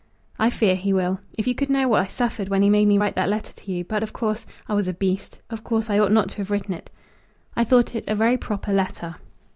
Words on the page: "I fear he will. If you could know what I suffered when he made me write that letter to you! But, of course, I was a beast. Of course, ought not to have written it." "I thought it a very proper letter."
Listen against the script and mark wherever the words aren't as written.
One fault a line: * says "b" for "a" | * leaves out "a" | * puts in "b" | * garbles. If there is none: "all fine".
* puts in "I"